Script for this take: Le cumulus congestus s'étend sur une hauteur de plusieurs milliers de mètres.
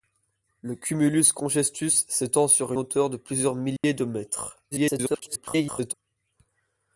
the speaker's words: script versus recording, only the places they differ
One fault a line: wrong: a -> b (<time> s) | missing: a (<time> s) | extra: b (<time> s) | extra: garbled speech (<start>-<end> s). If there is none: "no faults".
missing: une (2.7 s)
extra: garbled speech (4.7-5.9 s)